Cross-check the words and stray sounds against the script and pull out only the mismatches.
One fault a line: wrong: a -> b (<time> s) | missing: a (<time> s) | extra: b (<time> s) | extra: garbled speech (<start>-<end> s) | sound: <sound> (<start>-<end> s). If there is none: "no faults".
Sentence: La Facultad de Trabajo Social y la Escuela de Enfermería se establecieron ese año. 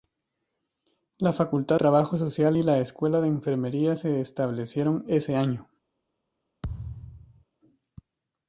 missing: de (1.8 s)
sound: thud (6.6-7.4 s)